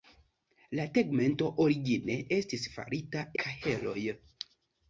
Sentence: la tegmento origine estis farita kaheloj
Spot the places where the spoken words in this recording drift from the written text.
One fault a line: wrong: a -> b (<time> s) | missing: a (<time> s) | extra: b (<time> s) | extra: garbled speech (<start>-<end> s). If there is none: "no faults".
no faults